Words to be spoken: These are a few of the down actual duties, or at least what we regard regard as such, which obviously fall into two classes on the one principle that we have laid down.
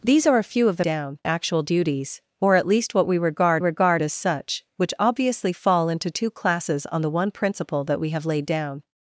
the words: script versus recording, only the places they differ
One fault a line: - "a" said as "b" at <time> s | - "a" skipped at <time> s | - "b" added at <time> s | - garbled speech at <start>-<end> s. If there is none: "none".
none